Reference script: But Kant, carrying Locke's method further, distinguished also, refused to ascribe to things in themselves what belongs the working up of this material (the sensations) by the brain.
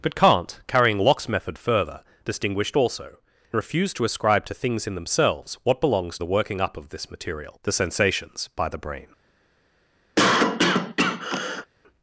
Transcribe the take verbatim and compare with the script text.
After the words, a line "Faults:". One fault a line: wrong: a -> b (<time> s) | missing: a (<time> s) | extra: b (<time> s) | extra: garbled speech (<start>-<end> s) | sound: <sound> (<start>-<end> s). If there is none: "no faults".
But Kant, carrying Locke's method further, distinguished also, refused to ascribe to things in themselves what belongs the working up of this material (the sensations) by the brain.
Faults:
sound: cough (10.2-11.7 s)